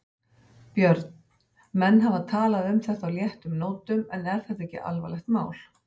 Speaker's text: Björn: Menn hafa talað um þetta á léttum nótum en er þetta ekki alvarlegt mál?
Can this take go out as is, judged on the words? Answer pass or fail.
pass